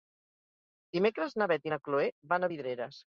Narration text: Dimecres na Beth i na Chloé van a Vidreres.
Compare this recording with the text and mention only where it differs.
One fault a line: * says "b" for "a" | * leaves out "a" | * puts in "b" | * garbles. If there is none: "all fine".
all fine